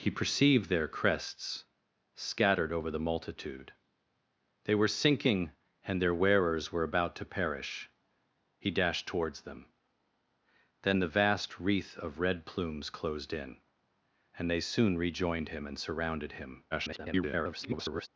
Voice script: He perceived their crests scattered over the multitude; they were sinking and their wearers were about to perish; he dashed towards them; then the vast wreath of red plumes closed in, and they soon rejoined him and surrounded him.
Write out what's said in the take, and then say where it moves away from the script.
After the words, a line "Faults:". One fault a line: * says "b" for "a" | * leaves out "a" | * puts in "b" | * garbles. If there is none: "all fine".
He perceived their crests scattered over the multitude; they were sinking and their wearers were about to perish; he dashed towards them; then the vast wreath of red plumes closed in, and they soon rejoined him and surrounded him. [garbled]
Faults:
* garbles